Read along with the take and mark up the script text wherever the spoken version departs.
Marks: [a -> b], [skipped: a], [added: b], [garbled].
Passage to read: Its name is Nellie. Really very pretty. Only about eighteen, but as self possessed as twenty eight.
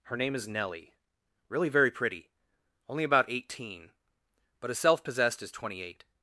[Its -> Her] name is Nellie. Really very pretty. Only about eighteen, but as self possessed as twenty eight.